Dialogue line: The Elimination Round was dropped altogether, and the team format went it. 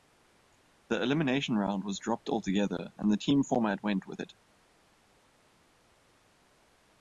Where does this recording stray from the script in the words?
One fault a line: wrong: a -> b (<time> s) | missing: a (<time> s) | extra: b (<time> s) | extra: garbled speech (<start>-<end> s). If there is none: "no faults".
extra: with (4.1 s)